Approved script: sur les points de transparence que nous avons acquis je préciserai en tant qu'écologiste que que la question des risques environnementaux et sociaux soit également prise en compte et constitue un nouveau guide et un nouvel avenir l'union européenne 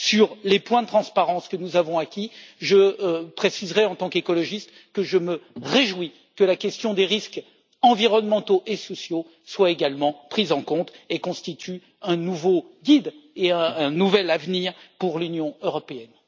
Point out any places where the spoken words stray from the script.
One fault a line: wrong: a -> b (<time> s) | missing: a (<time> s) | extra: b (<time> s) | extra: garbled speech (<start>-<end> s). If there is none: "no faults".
extra: je me réjouis (5.0 s)
extra: pour (15.0 s)